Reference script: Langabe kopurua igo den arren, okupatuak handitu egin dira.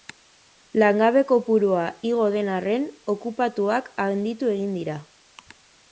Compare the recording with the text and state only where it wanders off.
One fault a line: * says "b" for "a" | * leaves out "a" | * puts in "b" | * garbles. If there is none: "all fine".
all fine